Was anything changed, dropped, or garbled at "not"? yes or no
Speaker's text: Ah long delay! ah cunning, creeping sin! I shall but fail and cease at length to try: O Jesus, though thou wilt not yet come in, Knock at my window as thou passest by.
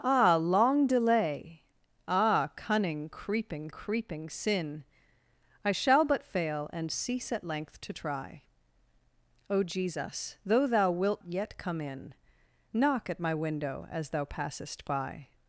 yes